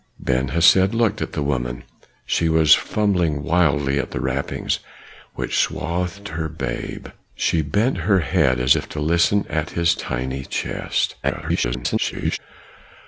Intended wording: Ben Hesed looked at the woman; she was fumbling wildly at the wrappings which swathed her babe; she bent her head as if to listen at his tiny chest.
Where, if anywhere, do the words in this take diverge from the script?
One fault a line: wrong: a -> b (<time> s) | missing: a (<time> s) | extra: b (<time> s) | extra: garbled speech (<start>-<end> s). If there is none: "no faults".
extra: garbled speech (11.2-12.4 s)